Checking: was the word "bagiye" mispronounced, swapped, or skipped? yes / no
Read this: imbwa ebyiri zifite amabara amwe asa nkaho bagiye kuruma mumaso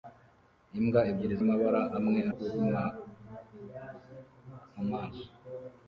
yes